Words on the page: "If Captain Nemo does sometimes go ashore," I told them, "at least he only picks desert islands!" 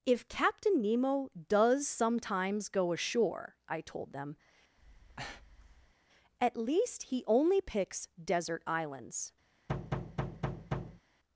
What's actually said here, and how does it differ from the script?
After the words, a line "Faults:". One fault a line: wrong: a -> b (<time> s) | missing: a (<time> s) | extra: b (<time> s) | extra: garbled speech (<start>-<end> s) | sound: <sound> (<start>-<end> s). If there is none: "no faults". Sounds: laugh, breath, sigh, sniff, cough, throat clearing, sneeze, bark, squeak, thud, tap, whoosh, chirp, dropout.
"If Captain Nemo does sometimes go ashore," I told them, "at least he only picks desert islands!"
Faults:
sound: breath (4.8-5.9 s)
sound: thud (9.7-11.0 s)